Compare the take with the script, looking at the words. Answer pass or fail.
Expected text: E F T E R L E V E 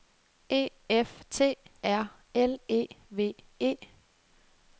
fail